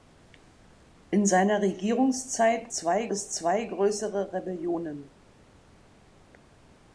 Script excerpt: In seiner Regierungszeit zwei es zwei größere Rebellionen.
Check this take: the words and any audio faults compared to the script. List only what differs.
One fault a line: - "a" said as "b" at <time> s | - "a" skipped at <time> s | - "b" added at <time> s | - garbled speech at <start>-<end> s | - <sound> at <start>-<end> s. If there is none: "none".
none